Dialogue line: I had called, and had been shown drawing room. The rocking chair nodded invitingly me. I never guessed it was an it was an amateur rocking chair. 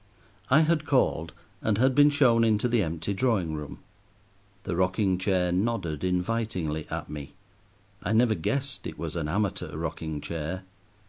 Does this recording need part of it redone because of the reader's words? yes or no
yes